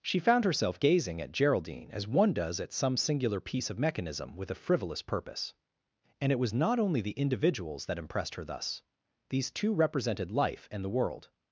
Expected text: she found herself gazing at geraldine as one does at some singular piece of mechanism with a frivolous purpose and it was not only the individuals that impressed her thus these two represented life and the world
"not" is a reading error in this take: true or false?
false